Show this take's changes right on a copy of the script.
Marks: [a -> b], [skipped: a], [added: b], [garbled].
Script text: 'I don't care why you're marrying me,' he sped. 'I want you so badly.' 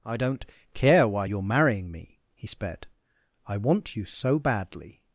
'I don't care why you're marrying me,' he sped. 'I want you so badly.'